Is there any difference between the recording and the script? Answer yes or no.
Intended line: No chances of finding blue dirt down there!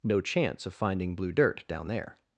yes